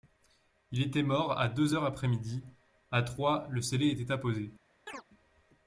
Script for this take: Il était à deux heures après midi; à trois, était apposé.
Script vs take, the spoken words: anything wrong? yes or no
yes